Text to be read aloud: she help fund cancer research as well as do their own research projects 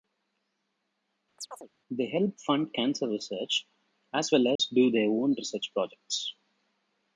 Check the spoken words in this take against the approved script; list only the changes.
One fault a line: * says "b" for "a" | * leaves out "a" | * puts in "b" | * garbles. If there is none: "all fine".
* says "they" for "she"